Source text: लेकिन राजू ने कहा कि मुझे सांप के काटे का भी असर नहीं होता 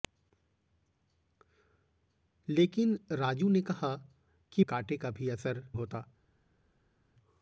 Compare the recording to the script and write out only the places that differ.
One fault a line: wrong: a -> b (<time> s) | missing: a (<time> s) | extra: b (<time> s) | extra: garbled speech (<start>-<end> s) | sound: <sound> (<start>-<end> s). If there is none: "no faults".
missing: मुझे सांप के (4.6 s)
missing: नहीं (5.7 s)